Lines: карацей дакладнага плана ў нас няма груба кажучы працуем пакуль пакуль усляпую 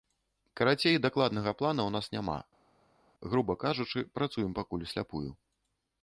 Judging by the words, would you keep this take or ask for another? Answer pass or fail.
fail